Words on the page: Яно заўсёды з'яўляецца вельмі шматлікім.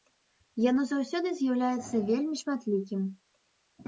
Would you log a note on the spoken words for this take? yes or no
no